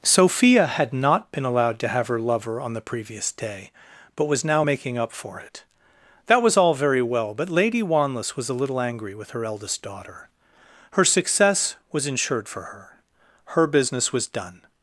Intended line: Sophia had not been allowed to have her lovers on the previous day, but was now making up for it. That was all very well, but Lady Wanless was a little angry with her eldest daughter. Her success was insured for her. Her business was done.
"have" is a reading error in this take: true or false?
false